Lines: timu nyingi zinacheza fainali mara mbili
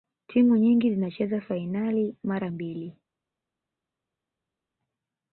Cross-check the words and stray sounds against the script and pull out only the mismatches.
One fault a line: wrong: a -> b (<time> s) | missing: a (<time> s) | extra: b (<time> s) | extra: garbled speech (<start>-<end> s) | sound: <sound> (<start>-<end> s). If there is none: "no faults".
no faults